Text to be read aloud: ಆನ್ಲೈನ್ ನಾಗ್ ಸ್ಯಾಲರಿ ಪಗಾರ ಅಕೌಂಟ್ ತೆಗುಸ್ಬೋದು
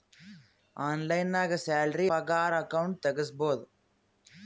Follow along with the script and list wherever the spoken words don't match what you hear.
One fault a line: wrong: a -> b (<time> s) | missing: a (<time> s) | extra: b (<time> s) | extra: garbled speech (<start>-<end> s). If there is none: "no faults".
no faults